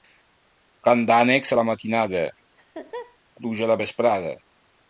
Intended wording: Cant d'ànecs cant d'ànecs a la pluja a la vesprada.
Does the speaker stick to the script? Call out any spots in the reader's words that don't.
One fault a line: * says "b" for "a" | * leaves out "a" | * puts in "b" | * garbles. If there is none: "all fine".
* leaves out "cant d'ànecs"
* puts in "matinada"